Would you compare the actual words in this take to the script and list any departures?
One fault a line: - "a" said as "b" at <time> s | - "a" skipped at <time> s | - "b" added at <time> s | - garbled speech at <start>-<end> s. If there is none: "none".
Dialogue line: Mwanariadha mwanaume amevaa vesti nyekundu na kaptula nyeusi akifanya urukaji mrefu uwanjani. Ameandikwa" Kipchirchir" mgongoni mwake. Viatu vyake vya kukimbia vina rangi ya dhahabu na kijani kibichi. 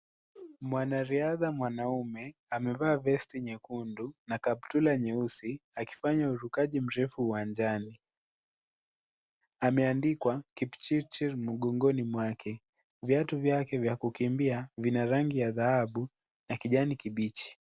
none